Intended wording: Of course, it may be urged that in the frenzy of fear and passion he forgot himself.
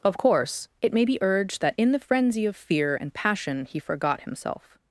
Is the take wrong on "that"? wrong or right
right